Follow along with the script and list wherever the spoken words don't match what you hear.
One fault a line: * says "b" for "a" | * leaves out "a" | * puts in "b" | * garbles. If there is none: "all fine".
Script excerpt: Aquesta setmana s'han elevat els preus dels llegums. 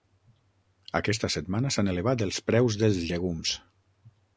all fine